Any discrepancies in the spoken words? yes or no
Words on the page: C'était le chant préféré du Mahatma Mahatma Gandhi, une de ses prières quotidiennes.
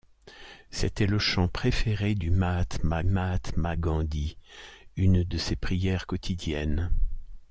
no